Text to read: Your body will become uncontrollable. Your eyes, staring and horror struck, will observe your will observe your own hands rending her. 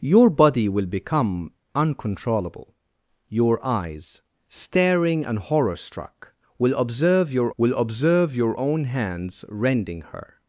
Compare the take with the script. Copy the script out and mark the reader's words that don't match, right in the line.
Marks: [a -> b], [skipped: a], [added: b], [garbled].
Your body will become uncontrollable. Your eyes, staring and horror struck, will observe your will observe your own hands rending her.